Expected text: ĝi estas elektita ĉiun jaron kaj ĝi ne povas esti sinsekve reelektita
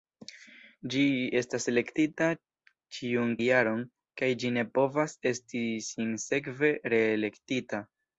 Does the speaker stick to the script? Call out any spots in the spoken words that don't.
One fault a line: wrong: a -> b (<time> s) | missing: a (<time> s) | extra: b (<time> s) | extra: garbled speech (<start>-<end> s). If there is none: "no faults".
no faults